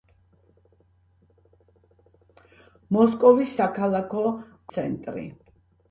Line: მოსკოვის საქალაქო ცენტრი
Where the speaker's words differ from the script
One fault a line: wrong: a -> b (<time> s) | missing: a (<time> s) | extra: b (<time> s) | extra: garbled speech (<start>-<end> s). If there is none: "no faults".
no faults